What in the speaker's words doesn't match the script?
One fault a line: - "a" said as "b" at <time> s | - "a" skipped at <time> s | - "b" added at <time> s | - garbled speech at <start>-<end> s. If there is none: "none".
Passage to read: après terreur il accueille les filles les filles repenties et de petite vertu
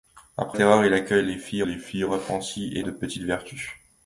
none